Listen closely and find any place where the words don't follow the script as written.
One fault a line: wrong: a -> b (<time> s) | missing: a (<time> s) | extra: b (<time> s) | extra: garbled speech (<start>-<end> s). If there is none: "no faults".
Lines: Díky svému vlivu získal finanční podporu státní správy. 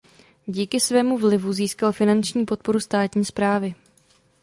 no faults